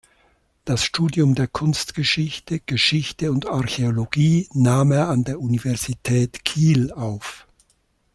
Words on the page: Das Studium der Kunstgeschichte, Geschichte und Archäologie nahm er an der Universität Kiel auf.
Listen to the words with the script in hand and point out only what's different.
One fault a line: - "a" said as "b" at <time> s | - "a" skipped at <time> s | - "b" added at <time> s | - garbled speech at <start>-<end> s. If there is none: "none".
none